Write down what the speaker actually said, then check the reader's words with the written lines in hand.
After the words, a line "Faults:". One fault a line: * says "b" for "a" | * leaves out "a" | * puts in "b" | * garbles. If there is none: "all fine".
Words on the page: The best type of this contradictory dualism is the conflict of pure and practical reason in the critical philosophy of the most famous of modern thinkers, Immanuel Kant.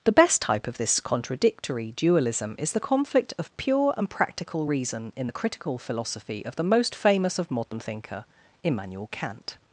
The best type of this contradictory dualism is the conflict of pure and practical reason in the critical philosophy of the most famous of modern thinker, Immanuel Kant.
Faults:
* says "thinker" for "thinkers"